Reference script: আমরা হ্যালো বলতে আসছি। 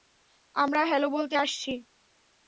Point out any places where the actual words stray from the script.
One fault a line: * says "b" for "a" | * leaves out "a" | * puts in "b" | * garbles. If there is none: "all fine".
all fine